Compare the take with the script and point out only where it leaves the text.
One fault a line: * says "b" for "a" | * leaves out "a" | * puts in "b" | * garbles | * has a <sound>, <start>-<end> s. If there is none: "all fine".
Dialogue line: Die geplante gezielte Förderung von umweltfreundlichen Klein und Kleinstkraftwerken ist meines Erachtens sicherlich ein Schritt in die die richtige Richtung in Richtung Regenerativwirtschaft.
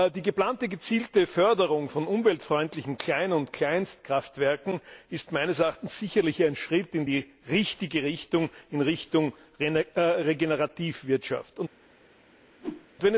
* leaves out "die"
* has a whoosh, 12.6-12.9 s